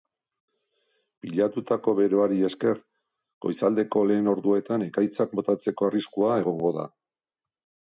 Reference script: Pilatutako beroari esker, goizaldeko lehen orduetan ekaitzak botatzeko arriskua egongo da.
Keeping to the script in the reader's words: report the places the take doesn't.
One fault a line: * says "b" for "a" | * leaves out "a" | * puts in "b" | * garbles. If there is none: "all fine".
all fine